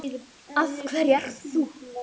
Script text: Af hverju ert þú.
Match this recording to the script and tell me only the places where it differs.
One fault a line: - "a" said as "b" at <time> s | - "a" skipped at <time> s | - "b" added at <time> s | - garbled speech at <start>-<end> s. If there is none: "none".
none